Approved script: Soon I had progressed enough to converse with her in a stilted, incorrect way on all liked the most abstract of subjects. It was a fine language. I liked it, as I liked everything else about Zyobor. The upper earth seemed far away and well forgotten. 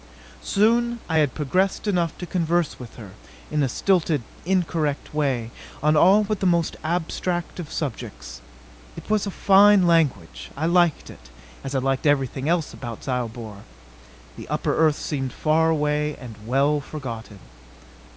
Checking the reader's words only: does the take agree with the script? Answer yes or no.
no